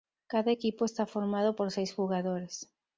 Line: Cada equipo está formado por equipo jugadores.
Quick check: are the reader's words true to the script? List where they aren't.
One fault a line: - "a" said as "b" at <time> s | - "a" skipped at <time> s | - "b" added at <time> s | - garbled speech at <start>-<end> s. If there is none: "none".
- "equipo" said as "seis" at 1.7 s